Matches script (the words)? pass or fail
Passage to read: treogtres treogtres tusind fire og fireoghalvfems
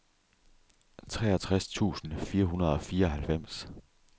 fail